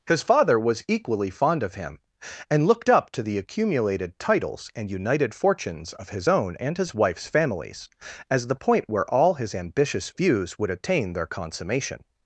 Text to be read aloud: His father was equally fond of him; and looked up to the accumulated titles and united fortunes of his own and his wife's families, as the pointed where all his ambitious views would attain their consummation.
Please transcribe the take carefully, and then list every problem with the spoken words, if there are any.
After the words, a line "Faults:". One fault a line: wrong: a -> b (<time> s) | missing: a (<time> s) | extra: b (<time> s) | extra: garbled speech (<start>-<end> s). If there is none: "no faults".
His father was equally fond of him; and looked up to the accumulated titles and united fortunes of his own and his wife's families, as the point where all his ambitious views would attain their consummation.
Faults:
wrong: pointed -> point (8.6 s)